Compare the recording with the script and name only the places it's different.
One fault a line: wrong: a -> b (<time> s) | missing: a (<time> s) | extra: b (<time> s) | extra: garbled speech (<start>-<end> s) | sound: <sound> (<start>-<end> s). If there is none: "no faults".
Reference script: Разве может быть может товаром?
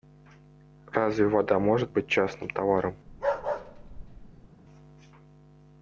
extra: вода (1.3 s)
wrong: может -> частным (2.1 s)
sound: bark (3.1-4.5 s)